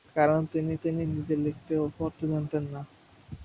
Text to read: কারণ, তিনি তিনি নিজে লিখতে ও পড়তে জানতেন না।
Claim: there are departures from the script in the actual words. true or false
false